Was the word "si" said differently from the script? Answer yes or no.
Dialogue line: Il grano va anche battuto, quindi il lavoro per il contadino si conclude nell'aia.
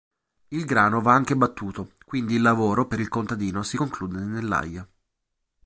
no